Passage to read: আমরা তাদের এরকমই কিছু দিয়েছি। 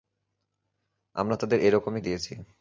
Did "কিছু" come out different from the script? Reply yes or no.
yes